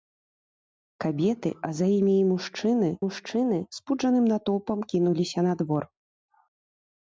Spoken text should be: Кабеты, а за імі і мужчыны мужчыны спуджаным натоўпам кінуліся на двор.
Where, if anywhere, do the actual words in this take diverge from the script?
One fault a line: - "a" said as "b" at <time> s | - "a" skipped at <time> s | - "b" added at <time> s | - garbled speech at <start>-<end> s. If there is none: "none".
none